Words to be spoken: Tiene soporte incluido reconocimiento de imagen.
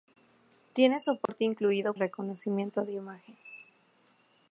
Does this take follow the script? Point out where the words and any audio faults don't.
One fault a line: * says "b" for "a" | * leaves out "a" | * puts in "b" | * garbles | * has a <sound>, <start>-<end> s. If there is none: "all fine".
* has a dropout, 1.3-1.3 s